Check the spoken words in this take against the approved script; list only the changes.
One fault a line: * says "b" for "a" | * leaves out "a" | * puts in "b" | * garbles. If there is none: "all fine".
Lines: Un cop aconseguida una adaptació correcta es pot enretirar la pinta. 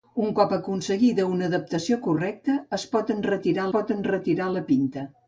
* puts in "pot enretirar"